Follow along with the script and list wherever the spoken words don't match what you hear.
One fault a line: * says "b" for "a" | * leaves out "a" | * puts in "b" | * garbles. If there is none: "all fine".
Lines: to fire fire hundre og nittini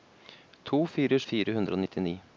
all fine